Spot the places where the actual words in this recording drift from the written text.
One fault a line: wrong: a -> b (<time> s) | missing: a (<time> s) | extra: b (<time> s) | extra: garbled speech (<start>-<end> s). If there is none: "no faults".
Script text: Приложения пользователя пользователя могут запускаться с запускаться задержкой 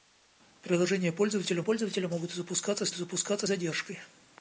no faults